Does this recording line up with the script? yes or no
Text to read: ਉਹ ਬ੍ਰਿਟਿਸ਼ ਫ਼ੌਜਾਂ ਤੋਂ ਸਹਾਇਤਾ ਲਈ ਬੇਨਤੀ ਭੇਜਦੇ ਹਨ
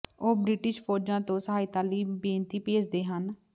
yes